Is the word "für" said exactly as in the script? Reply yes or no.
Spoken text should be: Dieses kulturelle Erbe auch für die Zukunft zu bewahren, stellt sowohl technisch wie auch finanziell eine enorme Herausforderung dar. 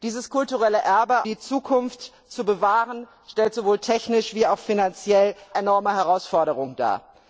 no